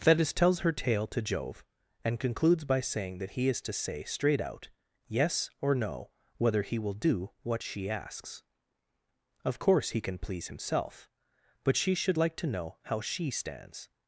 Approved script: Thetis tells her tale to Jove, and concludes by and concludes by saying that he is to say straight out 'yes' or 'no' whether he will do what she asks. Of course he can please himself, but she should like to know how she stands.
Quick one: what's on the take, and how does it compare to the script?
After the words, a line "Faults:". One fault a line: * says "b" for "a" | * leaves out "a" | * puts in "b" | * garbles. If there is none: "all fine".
Thetis tells her tale to Jove, and concludes by saying that he is to say straight out 'yes' or 'no' whether he will do what she asks. Of course he can please himself, but she should like to know how she stands.
Faults:
* leaves out "and concludes by"